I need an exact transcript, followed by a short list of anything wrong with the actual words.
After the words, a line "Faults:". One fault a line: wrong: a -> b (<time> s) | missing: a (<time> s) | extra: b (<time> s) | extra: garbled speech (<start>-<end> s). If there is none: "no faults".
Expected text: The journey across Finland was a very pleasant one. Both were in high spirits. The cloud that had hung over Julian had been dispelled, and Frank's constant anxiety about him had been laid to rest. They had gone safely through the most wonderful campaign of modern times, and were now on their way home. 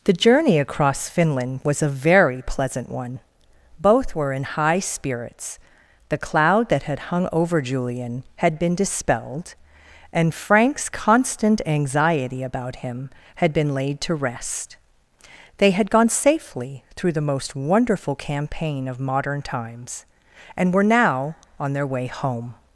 The journey across Finland was a very pleasant one. Both were in high spirits. The cloud that had hung over Julian had been dispelled, and Frank's constant anxiety about him had been laid to rest. They had gone safely through the most wonderful campaign of modern times, and were now on their way home.
Faults:
no faults